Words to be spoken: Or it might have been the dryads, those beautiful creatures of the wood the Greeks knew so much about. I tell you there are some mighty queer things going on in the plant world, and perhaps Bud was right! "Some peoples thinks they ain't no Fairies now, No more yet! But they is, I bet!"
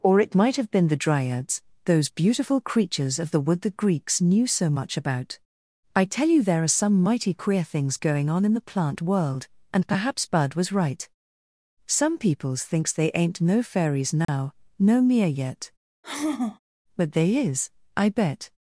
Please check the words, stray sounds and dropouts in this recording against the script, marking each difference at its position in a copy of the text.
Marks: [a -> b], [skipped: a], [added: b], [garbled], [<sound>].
Or it might have been the dryads, those beautiful creatures of the wood the Greeks knew so much about. I tell you there are some mighty queer things going on in the plant world, and perhaps Bud was right! "Some peoples thinks they ain't no Fairies now, [dropout] No [more -> mere] yet! [sigh] But they is, I bet!"